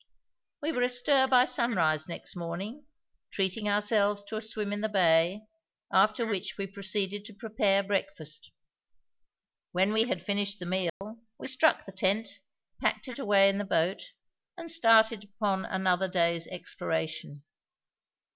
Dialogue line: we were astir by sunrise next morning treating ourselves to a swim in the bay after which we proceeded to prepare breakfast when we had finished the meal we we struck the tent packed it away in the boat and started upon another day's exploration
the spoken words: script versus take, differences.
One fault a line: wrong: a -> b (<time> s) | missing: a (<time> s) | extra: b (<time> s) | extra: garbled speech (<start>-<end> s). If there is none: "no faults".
missing: we (11.5 s)